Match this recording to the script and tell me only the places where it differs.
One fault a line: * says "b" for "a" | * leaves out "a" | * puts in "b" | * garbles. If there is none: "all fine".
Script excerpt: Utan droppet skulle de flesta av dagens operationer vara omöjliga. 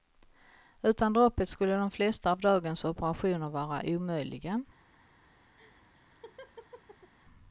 all fine